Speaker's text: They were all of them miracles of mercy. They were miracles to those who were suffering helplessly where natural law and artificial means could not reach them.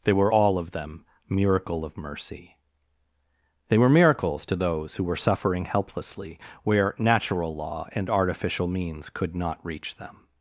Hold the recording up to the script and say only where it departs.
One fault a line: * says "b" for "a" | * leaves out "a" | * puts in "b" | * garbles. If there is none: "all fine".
* says "miracle" for "miracles"